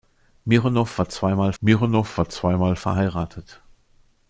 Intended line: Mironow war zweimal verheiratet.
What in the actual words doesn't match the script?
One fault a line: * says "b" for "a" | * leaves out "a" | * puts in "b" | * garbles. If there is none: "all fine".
* puts in "mironow war zweimal"